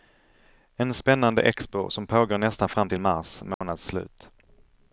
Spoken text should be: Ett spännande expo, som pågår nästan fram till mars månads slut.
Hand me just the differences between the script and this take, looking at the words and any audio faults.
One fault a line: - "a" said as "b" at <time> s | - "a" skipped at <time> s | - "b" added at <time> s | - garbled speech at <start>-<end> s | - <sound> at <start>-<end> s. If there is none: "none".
- "Ett" said as "En" at 0.8 s
- dropout at 3.5-3.6 s